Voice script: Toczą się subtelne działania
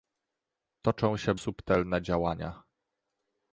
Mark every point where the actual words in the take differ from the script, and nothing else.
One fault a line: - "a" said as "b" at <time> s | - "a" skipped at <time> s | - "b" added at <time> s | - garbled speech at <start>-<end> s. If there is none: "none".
none